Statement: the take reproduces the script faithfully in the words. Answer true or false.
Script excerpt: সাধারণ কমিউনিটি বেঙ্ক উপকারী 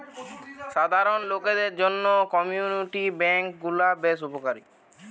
false